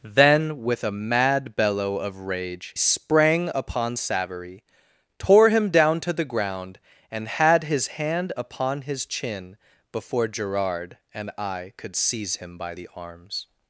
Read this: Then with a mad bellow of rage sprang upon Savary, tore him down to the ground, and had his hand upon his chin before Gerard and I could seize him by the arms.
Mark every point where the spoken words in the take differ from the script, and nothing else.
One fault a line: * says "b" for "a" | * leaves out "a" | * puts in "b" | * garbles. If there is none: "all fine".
all fine